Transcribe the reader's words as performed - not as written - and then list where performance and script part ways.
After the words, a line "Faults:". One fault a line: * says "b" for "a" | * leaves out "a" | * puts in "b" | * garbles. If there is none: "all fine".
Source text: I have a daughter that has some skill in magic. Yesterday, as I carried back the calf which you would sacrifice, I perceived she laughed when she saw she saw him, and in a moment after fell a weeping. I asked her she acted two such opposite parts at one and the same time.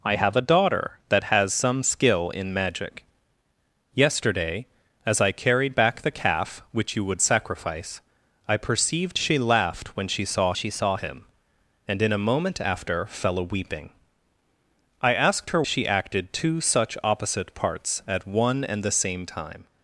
I have a daughter that has some skill in magic. Yesterday, as I carried back the calf which you would sacrifice, I perceived she laughed when she saw she saw him, and in a moment after fell a weeping. I asked her she acted two such opposite parts at one and the same time.
Faults:
all fine